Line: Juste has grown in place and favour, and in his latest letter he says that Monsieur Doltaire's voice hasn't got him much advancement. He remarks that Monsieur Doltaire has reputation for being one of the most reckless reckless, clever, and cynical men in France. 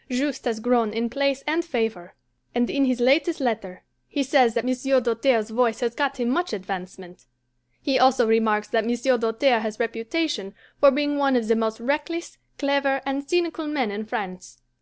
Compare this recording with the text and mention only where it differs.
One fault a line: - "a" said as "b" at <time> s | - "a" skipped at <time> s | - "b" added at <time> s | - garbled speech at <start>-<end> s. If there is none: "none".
- "hasn't" said as "has" at 5.8 s
- "also" added at 8.0 s
- "reckless" skipped at 12.4 s